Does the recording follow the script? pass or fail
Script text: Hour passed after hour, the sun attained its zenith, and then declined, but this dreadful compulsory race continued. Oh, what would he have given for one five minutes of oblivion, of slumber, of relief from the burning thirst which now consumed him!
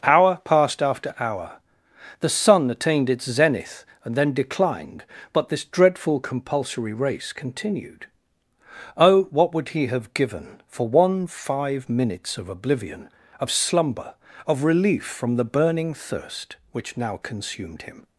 pass